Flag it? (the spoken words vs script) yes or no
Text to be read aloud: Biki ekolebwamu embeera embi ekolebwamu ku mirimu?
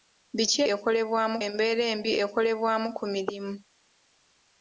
no